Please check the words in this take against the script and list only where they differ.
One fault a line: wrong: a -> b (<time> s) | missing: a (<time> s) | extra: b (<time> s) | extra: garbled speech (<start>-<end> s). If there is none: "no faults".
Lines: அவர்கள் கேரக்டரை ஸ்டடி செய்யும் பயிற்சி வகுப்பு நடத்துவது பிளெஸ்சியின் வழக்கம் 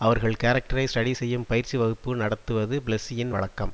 no faults